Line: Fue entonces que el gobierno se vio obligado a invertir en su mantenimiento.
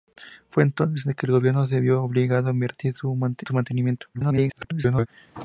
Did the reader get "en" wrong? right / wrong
wrong